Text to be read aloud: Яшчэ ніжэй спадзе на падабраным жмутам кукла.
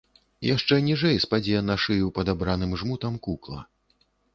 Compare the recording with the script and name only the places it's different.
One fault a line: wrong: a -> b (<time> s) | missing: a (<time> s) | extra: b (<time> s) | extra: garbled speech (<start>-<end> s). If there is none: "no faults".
extra: шыю (1.9 s)